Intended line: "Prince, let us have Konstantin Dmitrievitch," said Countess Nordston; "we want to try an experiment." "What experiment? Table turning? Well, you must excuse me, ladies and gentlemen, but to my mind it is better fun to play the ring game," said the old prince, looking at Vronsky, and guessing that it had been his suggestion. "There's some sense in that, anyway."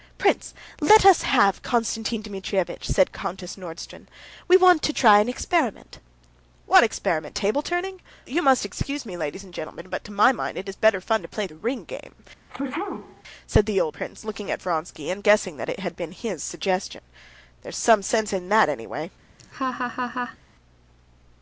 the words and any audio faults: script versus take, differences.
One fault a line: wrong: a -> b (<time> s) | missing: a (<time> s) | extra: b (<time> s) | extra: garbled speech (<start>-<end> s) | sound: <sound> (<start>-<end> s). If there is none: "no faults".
missing: Well (8.0 s)
sound: sneeze (12.5-13.2 s)
sound: laugh (19.4-20.4 s)